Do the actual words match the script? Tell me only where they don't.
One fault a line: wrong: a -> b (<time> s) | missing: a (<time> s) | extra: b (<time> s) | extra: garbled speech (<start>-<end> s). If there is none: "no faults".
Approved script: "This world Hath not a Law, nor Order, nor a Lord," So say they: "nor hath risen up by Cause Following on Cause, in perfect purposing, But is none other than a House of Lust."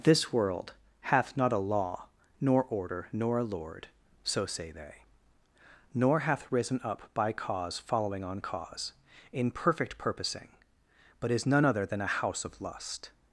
no faults